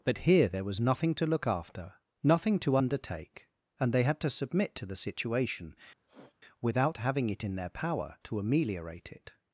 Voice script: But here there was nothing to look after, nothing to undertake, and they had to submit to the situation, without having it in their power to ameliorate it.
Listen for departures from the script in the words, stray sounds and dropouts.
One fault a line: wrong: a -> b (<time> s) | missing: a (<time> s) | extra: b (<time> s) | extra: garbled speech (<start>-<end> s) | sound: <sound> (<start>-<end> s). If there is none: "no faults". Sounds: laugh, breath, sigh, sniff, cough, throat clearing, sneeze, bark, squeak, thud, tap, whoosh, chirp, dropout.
sound: sniff (6.1-6.4 s)